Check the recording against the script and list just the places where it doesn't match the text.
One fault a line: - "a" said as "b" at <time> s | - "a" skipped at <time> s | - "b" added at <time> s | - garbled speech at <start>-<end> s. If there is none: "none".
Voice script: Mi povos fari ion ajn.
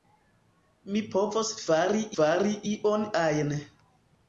- "fari" added at 2.2 s